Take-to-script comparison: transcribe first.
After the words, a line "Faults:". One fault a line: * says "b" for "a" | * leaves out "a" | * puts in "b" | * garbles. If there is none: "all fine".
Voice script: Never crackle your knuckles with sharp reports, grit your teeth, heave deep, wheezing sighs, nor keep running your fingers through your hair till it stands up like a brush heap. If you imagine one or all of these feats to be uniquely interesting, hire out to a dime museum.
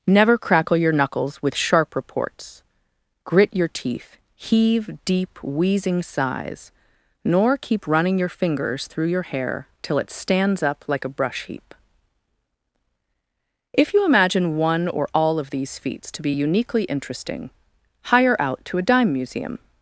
Never crackle your knuckles with sharp reports, grit your teeth, heave deep, wheezing sighs, nor keep running your fingers through your hair till it stands up like a brush heap. If you imagine one or all of these feats to be uniquely interesting, hire out to a dime museum.
Faults:
all fine